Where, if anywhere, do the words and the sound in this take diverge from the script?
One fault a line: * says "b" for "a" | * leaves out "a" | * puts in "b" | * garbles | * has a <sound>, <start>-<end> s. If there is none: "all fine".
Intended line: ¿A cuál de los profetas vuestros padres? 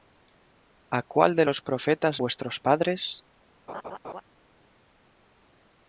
* has a laugh, 3.7-4.2 s